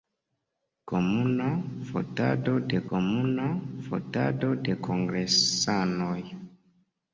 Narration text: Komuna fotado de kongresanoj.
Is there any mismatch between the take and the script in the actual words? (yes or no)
yes